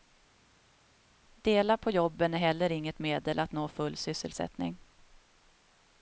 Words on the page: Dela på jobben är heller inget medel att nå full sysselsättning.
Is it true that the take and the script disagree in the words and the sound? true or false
false